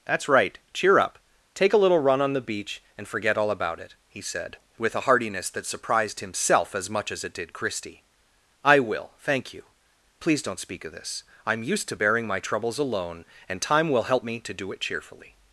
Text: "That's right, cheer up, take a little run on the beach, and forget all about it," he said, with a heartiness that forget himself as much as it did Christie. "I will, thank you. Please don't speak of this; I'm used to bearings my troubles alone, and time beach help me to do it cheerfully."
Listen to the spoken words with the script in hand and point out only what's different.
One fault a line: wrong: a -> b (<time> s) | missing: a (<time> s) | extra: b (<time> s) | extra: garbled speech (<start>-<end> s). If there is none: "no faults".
wrong: forget -> surprised (5.7 s)
wrong: bearings -> bearing (11.9 s)
wrong: beach -> will (13.9 s)